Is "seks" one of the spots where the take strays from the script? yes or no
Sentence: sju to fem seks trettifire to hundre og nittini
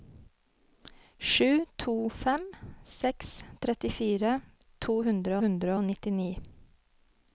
no